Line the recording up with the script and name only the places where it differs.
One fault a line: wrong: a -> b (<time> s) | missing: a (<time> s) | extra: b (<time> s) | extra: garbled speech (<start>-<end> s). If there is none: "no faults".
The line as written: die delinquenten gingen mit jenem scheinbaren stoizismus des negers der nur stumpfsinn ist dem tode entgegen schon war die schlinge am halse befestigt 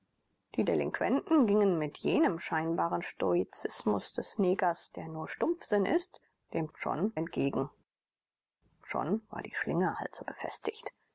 wrong: tode -> schon (6.7 s)
missing: am (9.9 s)